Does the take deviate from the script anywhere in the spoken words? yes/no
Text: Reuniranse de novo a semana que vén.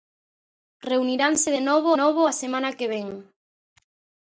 yes